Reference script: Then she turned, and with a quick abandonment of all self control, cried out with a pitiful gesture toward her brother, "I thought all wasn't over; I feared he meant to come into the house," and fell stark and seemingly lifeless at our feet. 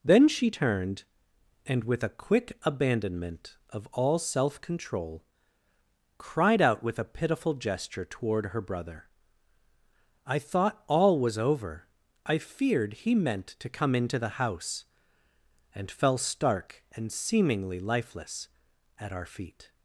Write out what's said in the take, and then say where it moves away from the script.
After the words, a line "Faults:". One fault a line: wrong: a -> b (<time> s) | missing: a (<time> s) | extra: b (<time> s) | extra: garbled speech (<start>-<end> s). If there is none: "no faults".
Then she turned, and with a quick abandonment of all self control, cried out with a pitiful gesture toward her brother, "I thought all was over; I feared he meant to come into the house," and fell stark and seemingly lifeless at our feet.
Faults:
wrong: wasn't -> was (11.2 s)